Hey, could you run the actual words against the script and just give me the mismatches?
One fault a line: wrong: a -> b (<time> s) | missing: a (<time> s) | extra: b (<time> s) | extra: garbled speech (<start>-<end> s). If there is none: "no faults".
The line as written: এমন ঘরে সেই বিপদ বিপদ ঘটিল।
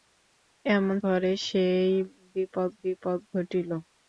no faults